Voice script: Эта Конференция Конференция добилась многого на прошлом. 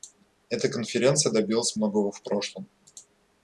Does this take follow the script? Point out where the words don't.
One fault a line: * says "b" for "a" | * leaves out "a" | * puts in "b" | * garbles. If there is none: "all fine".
* leaves out "Конференция"
* says "в" for "на"